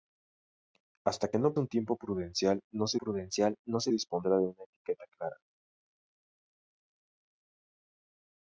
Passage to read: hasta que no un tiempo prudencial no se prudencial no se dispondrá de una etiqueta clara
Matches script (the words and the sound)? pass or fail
pass